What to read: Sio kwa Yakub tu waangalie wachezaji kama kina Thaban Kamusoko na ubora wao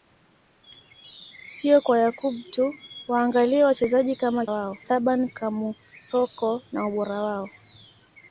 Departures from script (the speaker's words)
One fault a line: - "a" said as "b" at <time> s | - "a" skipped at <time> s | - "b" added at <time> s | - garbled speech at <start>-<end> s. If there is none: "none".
- "kina" said as "wao" at 4.5 s